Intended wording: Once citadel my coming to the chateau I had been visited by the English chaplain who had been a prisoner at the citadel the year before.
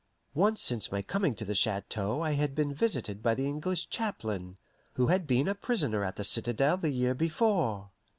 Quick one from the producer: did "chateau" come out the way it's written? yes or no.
yes